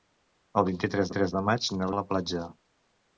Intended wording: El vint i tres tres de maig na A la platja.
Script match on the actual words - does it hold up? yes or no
yes